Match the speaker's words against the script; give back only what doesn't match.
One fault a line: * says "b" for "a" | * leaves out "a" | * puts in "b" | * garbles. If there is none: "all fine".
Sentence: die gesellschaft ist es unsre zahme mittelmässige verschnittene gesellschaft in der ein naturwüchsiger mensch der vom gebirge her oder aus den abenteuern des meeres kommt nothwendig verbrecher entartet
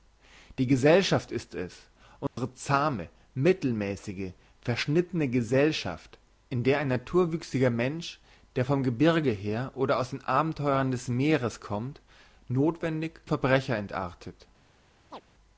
all fine